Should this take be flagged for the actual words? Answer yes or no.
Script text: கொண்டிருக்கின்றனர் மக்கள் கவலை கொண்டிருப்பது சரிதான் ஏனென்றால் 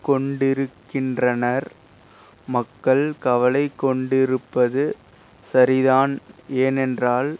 no